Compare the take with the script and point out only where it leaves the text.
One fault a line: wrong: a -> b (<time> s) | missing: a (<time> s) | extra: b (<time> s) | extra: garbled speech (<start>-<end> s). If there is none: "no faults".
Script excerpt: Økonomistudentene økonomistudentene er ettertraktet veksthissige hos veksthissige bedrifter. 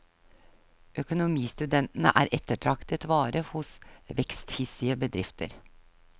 missing: økonomistudentene (2.1 s)
wrong: veksthissige -> vare (3.1 s)